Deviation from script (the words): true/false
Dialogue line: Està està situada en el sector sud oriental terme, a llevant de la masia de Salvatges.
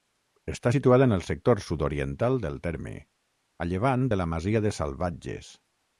true